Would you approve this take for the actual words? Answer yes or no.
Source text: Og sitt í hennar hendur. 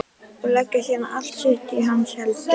no